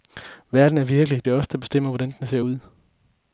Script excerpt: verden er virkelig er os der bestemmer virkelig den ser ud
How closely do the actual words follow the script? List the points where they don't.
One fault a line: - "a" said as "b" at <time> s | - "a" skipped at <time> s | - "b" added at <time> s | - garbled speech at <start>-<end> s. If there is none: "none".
- "det" added at 1.2 s
- "virkelig" said as "hvordan" at 1.9 s